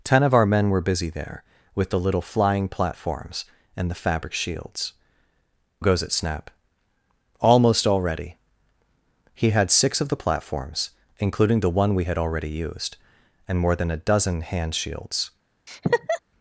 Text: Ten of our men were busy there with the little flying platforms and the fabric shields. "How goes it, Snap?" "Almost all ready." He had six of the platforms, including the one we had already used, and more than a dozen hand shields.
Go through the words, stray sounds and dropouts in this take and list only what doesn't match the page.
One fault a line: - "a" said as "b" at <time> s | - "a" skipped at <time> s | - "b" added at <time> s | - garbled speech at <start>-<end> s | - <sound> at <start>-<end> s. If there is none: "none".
- "How" skipped at 4.9 s
- laugh at 15.7-16.2 s